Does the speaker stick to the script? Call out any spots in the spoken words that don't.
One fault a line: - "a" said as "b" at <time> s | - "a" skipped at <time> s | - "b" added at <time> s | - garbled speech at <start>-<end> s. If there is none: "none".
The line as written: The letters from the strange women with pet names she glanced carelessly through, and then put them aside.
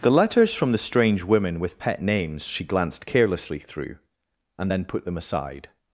none